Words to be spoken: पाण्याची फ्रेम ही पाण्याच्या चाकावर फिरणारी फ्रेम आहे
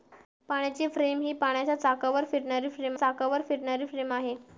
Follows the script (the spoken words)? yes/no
no